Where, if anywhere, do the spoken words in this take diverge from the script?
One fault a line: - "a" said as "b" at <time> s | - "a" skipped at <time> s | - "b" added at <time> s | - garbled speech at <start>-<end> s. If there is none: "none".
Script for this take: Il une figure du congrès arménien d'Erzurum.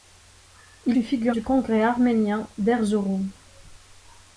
none